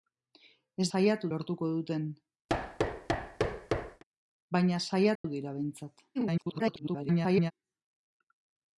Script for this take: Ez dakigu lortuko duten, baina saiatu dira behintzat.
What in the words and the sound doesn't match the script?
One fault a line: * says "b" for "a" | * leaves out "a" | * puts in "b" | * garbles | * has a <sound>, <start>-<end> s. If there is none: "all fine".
* says "saiatu" for "dakigu"
* has a thud, 2.5-4.0 s
* has a dropout, 5.2-5.2 s
* garbles